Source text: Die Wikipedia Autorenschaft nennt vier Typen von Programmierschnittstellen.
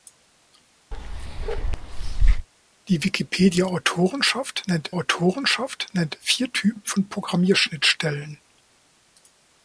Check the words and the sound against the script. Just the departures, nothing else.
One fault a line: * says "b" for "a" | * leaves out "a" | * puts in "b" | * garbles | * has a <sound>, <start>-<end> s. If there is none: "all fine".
* has a bark, 0.9-2.5 s
* puts in "Autorenschaft nennt"